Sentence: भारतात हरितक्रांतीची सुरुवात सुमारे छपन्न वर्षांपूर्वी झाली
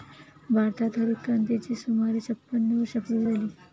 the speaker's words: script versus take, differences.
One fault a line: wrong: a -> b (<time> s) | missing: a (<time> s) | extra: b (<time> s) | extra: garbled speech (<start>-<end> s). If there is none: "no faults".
missing: सुरुवात (1.8 s)